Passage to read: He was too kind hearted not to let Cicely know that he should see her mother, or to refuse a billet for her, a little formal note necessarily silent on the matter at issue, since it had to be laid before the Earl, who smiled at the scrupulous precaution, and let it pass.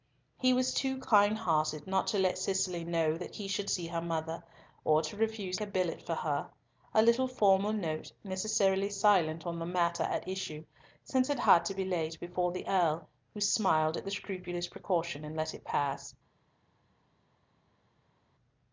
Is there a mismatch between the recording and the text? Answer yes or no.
no